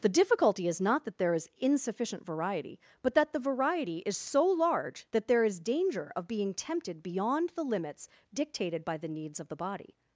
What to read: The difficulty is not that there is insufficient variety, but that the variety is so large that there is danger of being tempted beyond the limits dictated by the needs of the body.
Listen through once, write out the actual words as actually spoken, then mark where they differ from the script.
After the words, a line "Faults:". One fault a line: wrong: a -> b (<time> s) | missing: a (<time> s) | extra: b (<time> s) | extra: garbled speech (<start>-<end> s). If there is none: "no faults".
The difficulty is not that there is insufficient variety, but that the variety is so large that there is danger of being tempted beyond the limits dictated by the needs of the body.
Faults:
no faults